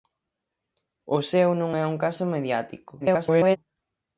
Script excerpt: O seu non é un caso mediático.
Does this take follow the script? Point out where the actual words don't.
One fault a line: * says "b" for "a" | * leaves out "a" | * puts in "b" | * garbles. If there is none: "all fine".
* garbles